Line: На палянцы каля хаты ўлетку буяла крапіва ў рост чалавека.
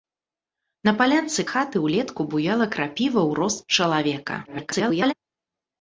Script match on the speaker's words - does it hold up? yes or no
no